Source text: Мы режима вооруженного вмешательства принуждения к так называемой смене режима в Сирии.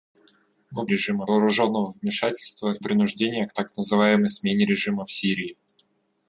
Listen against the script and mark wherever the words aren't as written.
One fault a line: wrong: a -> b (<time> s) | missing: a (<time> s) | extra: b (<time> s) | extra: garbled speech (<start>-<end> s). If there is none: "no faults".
no faults